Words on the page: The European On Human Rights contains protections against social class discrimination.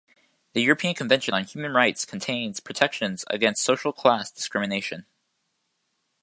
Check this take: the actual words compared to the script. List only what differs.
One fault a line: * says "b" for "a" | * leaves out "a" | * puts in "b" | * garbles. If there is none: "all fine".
* puts in "Convention"